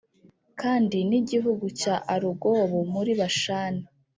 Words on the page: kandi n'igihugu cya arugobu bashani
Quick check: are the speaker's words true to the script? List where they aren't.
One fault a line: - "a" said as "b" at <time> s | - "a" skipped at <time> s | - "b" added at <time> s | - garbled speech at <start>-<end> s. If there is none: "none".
- "muri" added at 2.9 s